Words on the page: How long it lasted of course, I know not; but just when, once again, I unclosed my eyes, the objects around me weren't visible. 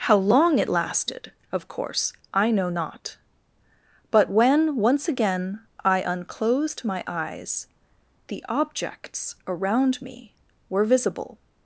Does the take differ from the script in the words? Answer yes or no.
yes